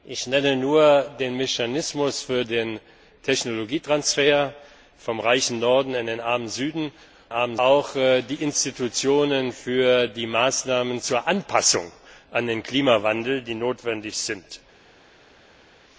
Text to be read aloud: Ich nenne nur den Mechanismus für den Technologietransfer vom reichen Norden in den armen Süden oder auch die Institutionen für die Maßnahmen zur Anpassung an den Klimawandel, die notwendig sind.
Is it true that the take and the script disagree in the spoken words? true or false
true